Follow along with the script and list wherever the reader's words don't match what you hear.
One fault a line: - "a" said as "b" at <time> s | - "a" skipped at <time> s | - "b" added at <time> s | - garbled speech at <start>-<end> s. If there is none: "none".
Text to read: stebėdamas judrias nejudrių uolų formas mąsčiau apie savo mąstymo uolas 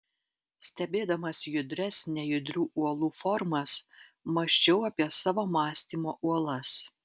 none